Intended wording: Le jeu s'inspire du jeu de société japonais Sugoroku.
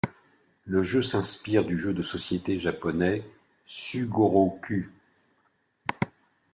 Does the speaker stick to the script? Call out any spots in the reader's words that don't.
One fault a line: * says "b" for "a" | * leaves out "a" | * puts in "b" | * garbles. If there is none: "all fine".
all fine